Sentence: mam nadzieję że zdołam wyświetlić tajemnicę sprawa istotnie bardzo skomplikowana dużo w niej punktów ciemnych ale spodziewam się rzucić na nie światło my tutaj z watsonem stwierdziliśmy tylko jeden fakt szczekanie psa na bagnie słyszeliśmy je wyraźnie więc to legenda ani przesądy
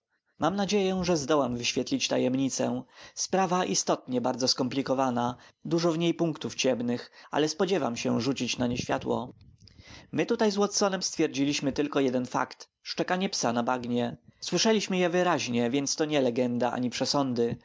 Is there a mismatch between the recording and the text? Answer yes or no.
yes